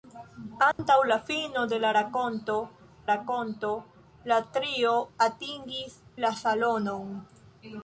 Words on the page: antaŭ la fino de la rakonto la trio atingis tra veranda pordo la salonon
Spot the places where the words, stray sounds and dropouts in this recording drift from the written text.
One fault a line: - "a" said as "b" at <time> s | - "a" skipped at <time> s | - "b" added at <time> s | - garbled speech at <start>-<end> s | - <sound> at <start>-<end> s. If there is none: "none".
- dropout at 0.7-0.8 s
- "rakonto" added at 3.1 s
- "tra veranda pordo" skipped at 6.0 s